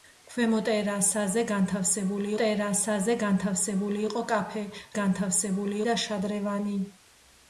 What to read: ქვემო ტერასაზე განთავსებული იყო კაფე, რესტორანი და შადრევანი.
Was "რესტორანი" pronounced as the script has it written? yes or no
no